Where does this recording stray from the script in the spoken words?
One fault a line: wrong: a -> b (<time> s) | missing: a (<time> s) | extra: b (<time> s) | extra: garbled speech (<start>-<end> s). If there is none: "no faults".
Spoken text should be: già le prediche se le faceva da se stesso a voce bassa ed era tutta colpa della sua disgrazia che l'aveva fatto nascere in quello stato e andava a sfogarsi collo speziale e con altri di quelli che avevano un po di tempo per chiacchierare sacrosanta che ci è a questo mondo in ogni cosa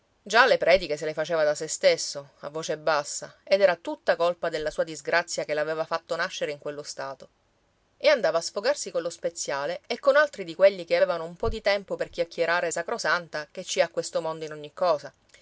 no faults